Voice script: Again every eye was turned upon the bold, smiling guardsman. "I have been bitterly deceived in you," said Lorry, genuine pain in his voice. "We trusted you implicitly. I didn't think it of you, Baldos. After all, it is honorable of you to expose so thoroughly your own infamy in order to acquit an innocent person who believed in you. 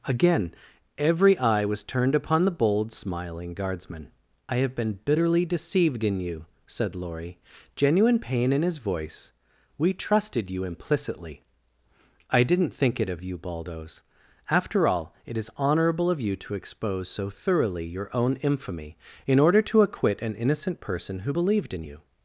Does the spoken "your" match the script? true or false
true